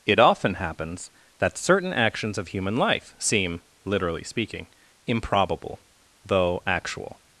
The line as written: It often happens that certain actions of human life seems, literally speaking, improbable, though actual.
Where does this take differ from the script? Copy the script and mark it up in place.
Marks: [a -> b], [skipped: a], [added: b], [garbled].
It often happens that certain actions of human life [seems, -> seem] literally speaking, improbable, though actual.